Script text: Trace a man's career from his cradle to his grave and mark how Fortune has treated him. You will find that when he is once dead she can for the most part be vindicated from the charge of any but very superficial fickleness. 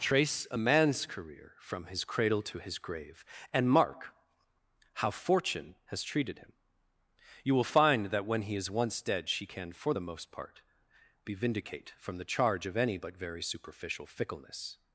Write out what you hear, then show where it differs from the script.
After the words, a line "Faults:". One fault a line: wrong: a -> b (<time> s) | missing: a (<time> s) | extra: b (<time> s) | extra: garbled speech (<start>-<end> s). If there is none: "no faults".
Trace a man's career from his cradle to his grave and mark how Fortune has treated him. You will find that when he is once dead she can for the most part be vindicate from the charge of any but very superficial fickleness.
Faults:
wrong: vindicated -> vindicate (11.3 s)